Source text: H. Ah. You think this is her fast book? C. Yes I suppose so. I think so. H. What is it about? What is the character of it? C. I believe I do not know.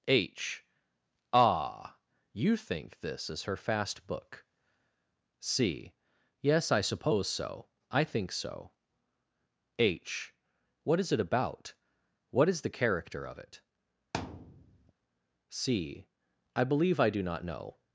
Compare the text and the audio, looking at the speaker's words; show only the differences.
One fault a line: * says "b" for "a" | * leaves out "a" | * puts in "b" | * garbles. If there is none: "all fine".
all fine